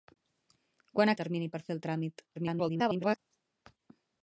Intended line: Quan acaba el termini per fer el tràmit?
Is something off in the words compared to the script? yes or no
yes